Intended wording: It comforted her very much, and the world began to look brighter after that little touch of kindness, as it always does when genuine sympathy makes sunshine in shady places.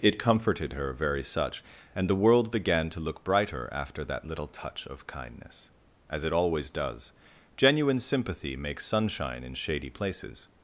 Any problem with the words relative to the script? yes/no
yes